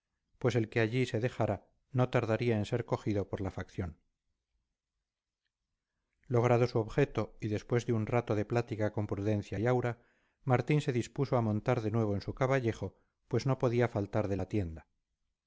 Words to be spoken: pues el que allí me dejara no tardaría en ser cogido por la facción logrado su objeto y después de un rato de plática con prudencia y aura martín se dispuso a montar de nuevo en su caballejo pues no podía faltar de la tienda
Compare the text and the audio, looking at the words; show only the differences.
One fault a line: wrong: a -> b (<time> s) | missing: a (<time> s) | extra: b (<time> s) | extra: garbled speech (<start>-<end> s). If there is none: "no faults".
wrong: me -> se (1.1 s)